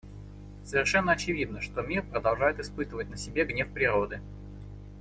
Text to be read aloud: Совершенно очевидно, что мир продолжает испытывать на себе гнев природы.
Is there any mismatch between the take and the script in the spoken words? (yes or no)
no